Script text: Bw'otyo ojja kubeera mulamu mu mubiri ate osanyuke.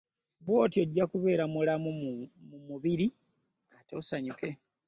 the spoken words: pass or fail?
pass